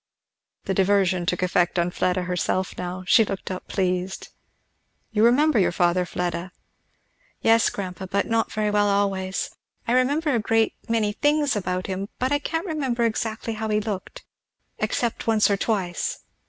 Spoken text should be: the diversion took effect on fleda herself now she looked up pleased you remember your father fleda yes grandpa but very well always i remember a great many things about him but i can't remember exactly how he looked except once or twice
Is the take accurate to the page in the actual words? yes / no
no